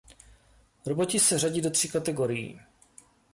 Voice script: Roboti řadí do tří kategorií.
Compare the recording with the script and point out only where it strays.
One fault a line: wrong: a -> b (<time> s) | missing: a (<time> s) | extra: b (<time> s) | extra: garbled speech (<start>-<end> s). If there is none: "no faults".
extra: se (1.2 s)